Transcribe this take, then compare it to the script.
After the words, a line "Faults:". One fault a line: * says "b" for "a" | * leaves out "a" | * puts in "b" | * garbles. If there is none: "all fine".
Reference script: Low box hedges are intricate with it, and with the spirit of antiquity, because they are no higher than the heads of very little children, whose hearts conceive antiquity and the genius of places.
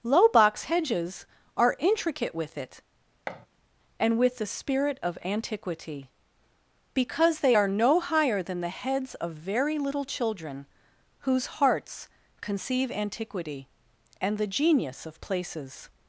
Low box hedges are intricate with it, and with the spirit of antiquity, because they are no higher than the heads of very little children, whose hearts conceive antiquity and the genius of places.
Faults:
all fine